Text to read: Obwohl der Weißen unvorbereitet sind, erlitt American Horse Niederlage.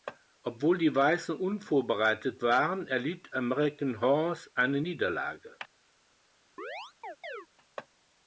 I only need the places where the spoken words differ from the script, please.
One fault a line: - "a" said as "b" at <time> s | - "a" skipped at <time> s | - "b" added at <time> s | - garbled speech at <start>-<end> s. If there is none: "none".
- "der" said as "die" at 0.8 s
- "sind" said as "waren" at 2.4 s
- "eine" added at 4.5 s